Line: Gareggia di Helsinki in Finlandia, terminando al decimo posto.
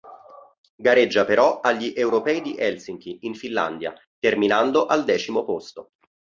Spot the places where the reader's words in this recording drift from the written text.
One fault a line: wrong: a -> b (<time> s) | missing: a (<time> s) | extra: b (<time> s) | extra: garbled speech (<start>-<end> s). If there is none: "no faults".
extra: però agli Europei (1.2 s)